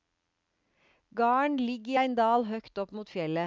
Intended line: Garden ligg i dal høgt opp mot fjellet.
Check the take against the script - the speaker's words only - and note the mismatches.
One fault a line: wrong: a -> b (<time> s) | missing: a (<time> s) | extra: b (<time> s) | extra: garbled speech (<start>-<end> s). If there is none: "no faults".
extra: ein (2.0 s)